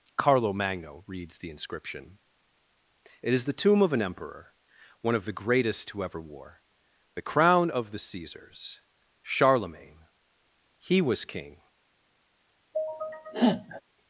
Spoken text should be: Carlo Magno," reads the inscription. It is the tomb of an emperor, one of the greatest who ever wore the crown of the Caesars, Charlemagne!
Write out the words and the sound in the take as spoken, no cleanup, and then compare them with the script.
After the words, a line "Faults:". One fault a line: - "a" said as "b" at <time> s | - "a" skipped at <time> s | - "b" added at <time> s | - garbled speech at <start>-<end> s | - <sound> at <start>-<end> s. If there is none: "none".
Carlo Magno," reads the inscription. It is the tomb of an emperor, one of the greatest who ever wore the crown of the Caesars, Charlemagne! He was King
Faults:
- "He was King" added at 10.8 s
- sneeze at 12.7-13.8 s